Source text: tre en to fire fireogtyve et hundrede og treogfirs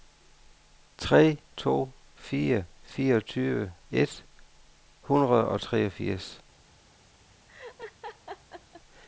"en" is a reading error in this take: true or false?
true